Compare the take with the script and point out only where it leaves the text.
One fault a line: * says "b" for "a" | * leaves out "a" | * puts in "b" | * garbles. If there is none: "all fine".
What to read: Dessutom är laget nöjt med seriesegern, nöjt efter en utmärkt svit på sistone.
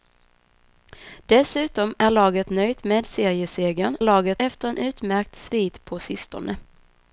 * says "laget" for "nöjt"